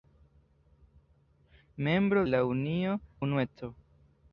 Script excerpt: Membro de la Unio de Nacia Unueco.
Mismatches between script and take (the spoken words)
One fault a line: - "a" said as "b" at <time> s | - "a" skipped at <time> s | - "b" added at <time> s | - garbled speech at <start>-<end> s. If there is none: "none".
- "de" skipped at 2.2 s
- "de Nacia" skipped at 3.0 s